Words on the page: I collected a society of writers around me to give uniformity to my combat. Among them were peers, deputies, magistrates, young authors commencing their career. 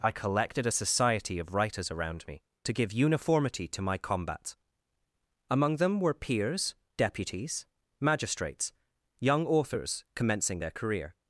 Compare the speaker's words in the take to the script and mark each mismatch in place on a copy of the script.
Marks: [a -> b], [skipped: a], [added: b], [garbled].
I collected a society of writers around me to give uniformity to my combat. Among them were peers, deputies, magistrates, young authors commencing their career.